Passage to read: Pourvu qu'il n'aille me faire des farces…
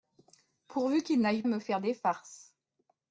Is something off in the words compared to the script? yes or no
no